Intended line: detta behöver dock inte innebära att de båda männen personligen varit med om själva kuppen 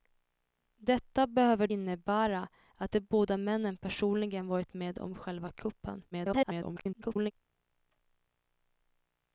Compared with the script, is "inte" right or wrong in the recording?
wrong